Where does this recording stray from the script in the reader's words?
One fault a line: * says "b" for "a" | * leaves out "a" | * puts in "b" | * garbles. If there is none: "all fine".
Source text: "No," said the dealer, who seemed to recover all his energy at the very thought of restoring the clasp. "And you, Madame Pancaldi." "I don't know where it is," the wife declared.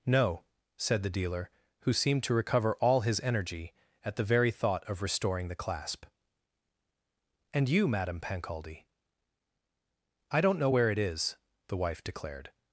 all fine